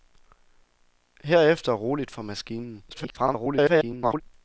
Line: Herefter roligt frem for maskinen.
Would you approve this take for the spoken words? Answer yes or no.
no